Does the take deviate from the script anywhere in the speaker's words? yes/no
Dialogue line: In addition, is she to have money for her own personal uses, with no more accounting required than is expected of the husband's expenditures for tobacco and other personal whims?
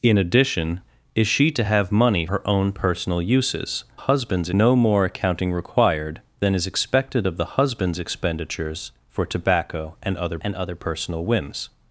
yes